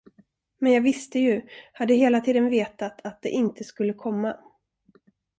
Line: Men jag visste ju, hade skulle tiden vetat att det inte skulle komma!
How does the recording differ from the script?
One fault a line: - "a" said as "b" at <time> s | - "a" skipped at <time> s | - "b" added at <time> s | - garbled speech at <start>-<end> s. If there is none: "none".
- "skulle" said as "hela" at 1.9 s